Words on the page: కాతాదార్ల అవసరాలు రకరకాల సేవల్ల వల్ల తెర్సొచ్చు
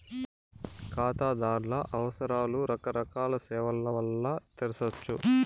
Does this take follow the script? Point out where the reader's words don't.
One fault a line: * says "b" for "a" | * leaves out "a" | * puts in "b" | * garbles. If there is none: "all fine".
all fine